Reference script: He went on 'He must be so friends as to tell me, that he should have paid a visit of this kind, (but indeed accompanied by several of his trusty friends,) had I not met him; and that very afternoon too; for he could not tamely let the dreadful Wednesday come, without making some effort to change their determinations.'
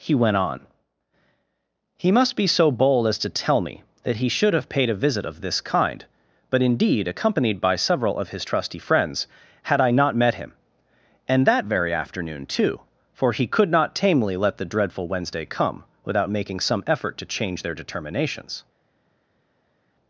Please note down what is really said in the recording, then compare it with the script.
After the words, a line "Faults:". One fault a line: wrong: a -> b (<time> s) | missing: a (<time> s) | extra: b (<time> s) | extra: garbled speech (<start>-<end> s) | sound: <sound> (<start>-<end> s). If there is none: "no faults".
He went on 'He must be so bold as to tell me, that he should have paid a visit of this kind, (but indeed accompanied by several of his trusty friends,) had I not met him; and that very afternoon too; for he could not tamely let the dreadful Wednesday come, without making some effort to change their determinations.'
Faults:
wrong: friends -> bold (2.7 s)